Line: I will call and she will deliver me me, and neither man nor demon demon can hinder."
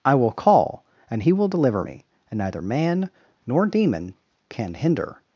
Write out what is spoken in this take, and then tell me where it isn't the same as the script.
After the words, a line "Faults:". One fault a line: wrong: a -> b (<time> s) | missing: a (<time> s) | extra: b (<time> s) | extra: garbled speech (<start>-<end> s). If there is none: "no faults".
I will call and he will deliver me, and neither man nor demon can hinder."
Faults:
wrong: she -> he (1.2 s)
missing: me (2.0 s)
missing: demon (4.1 s)